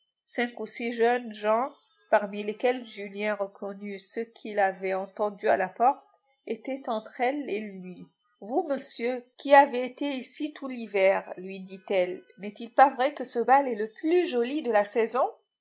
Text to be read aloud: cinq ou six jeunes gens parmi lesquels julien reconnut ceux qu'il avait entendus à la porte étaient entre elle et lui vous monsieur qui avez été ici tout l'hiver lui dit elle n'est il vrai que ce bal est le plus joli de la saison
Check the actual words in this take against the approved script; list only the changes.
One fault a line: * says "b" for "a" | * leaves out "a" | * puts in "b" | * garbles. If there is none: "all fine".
* puts in "pas"